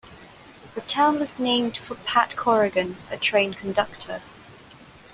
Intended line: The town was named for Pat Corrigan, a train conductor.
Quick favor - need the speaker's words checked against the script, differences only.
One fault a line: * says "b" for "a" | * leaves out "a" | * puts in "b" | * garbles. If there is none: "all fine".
all fine